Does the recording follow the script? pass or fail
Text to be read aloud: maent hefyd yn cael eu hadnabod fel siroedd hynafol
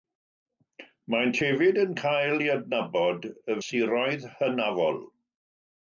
fail